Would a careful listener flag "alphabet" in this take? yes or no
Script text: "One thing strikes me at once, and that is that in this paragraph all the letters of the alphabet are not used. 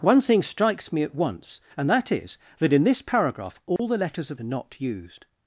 yes